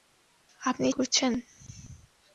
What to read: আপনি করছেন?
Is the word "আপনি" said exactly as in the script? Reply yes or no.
yes